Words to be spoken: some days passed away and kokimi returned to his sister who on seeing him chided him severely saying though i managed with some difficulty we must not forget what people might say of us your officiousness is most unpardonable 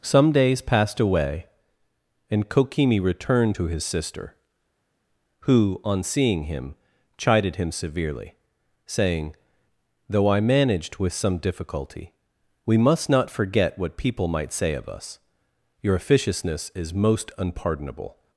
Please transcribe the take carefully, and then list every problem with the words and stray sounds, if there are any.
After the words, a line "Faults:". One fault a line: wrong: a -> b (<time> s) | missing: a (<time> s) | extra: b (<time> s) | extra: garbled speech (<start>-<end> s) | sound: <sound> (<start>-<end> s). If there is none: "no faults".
some days passed away and kokimi returned to his sister who on seeing him chided him severely saying though i managed with some difficulty we must not forget what people might say of us your officiousness is most unpardonable
Faults:
no faults